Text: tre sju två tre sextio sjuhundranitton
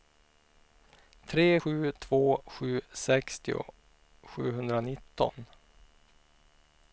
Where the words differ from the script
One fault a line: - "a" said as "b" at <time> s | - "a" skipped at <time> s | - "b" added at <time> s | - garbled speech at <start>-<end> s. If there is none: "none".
- "tre" said as "sju" at 2.5 s